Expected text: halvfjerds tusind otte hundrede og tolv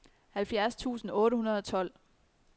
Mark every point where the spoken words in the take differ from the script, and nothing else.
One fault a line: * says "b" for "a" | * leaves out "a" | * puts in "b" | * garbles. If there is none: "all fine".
all fine